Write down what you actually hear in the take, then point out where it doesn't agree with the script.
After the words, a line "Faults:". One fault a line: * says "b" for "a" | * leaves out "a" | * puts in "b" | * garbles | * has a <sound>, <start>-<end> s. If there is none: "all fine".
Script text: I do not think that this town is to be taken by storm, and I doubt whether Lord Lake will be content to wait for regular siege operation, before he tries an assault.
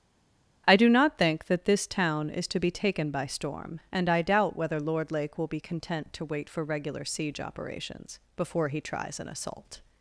I do not think that this town is to be taken by storm, and I doubt whether Lord Lake will be content to wait for regular siege operations, before he tries an assault.
Faults:
* says "operations" for "operation"